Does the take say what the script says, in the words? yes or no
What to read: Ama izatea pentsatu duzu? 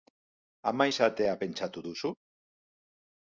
yes